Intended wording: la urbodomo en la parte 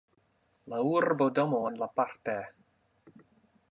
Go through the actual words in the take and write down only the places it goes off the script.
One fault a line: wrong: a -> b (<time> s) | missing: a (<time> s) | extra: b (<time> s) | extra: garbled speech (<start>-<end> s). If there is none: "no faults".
no faults